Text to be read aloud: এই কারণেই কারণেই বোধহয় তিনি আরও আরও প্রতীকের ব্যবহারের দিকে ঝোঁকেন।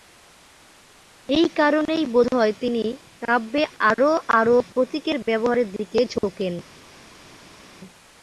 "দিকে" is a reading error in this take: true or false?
false